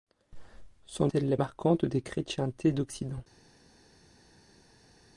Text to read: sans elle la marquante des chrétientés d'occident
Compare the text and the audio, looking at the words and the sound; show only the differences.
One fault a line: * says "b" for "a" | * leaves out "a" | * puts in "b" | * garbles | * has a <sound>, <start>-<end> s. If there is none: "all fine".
all fine